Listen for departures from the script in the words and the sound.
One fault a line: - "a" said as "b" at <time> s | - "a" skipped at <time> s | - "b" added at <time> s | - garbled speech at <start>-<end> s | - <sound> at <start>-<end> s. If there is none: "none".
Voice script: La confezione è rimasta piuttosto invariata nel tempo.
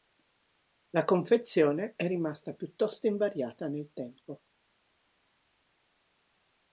none